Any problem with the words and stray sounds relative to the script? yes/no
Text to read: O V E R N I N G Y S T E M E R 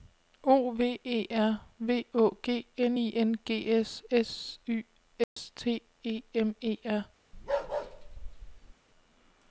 yes